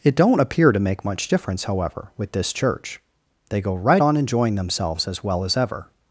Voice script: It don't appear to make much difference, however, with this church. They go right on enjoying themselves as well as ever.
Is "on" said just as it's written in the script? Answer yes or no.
yes